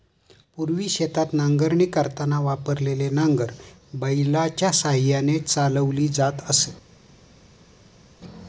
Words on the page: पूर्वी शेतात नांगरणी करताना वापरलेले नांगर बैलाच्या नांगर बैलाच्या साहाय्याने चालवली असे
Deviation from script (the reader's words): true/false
true